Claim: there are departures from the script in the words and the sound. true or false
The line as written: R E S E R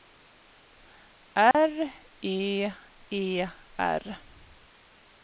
true